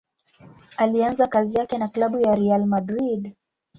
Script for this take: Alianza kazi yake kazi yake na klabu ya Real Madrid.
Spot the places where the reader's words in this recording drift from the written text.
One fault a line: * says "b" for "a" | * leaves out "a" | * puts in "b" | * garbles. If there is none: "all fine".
* leaves out "kazi yake"